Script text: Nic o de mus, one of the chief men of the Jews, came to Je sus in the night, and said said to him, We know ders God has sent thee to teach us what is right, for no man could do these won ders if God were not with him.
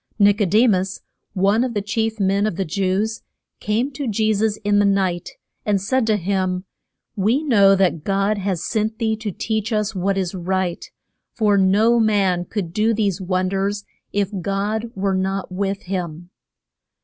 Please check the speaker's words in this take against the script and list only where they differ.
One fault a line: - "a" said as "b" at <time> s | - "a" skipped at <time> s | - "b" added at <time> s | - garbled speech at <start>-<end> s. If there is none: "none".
- "said" skipped at 6.0 s
- "ders" said as "that" at 7.8 s